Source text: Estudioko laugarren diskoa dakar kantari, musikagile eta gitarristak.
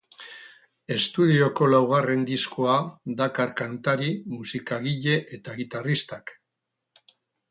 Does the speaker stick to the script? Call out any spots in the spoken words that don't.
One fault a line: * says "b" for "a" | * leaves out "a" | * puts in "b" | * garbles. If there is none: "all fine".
all fine